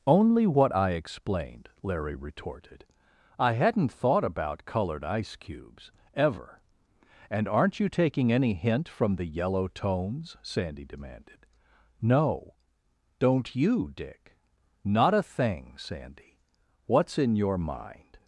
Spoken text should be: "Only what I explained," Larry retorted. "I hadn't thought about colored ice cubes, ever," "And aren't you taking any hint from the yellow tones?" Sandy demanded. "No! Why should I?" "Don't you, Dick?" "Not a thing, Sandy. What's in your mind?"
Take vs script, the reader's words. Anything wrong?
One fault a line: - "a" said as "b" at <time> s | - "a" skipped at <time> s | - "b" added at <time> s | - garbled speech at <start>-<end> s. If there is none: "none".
- "Why should I" skipped at 12.5 s